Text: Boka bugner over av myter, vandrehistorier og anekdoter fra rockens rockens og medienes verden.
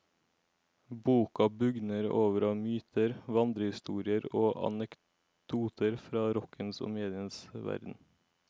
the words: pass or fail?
fail